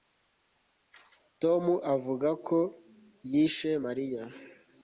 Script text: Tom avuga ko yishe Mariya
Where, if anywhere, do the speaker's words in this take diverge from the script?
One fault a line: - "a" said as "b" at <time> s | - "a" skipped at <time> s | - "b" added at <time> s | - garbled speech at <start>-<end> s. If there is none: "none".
none